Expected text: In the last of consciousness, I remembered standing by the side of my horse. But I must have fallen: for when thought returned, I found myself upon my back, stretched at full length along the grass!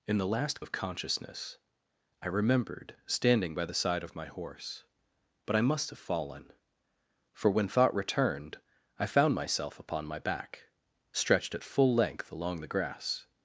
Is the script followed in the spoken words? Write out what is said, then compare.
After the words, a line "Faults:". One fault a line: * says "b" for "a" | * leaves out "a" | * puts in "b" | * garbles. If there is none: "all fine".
In the last of consciousness, I remembered standing by the side of my horse. But I must have fallen: for when thought returned, I found myself upon my back, stretched at full length along the grass!
Faults:
all fine